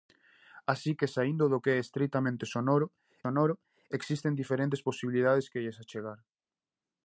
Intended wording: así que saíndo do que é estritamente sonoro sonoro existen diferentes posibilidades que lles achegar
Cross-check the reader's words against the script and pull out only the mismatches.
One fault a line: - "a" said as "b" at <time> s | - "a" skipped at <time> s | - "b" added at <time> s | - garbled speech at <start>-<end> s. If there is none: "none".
none